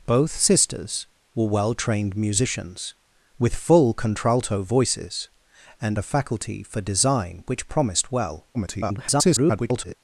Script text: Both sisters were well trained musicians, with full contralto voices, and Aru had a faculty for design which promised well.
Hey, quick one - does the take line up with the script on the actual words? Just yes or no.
no